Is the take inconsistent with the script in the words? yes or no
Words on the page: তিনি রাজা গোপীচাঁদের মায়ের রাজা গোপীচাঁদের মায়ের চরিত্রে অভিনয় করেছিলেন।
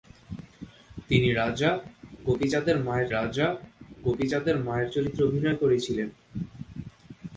no